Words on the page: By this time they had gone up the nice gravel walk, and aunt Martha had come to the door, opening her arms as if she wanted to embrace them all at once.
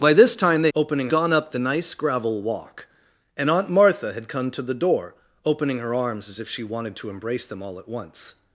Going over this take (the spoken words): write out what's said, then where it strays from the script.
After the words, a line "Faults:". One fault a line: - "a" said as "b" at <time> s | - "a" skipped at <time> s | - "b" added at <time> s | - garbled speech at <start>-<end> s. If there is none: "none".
By this time they opening gone up the nice gravel walk, and aunt Martha had come to the door, opening her arms as if she wanted to embrace them all at once.
Faults:
- "had" said as "opening" at 0.7 s